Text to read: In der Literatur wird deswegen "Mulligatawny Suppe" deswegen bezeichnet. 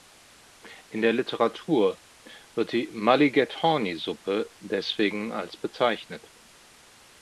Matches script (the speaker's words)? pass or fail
fail